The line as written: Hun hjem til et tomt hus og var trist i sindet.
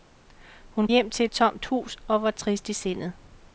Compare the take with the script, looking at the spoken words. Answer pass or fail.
pass